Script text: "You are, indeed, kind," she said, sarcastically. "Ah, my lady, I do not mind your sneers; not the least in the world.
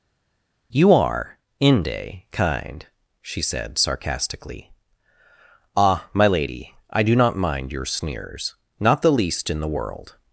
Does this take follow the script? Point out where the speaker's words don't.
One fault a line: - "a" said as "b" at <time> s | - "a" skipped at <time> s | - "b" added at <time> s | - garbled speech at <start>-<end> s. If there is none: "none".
- "indeed" said as "inde" at 1.6 s